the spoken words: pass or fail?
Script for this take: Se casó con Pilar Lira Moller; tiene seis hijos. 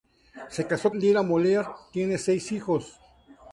fail